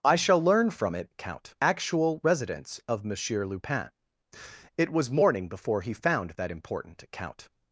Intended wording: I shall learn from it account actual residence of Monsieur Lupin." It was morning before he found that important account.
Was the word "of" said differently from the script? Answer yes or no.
no